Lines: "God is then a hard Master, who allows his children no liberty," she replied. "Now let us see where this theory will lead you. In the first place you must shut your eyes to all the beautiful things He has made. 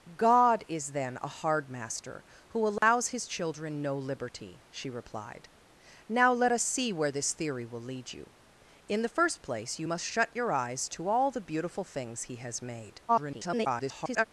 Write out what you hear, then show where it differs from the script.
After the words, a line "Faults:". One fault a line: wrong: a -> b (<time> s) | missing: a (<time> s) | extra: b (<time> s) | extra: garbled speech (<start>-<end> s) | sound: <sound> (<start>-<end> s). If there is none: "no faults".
"God is then a hard Master, who allows his children no liberty," she replied. "Now let us see where this theory will lead you. In the first place you must shut your eyes to all the beautiful things He has made. [garbled]
Faults:
sound: dropout (2.8-2.8 s)
extra: garbled speech (13.1-14.3 s)